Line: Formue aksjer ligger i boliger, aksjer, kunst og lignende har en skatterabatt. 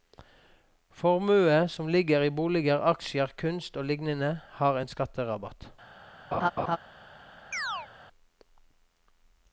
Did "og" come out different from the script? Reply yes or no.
no